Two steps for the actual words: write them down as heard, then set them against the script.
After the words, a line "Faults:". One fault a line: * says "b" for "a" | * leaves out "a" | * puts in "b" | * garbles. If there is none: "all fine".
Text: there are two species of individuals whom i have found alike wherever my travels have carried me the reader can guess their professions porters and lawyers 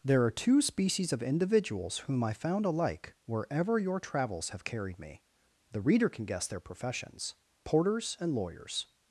there are two species of individuals whom i found alike wherever your travels have carried me the reader can guess their professions porters and lawyers
Faults:
* leaves out "have"
* says "your" for "my"